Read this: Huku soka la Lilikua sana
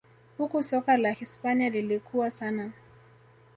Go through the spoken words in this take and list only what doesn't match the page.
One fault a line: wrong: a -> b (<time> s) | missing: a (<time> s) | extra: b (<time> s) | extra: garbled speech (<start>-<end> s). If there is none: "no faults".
extra: Hispania (1.1 s)